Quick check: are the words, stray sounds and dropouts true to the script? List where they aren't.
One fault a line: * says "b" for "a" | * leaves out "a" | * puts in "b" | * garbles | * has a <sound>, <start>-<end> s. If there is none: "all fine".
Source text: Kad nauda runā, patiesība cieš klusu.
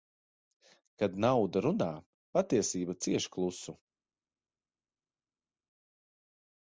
all fine